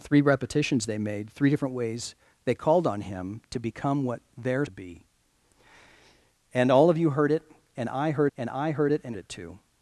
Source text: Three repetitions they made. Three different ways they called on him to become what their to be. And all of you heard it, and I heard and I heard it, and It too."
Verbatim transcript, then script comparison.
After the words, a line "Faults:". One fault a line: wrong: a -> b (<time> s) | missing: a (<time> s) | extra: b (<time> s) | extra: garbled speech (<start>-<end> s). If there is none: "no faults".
Three repetitions they made. Three different ways they called on him to become what their to be. And all of you heard it, and I heard and I heard it, and It too."
Faults:
no faults